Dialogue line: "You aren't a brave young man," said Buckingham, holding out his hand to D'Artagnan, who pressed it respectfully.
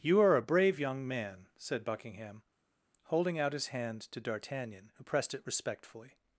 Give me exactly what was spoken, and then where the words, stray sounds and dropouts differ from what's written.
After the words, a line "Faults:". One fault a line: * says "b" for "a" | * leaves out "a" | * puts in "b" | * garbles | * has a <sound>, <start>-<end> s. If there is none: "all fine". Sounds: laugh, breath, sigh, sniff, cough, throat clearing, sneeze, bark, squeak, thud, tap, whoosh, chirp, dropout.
"You are a brave young man," said Buckingham, holding out his hand to D'Artagnan, who pressed it respectfully.
Faults:
* says "are" for "aren't"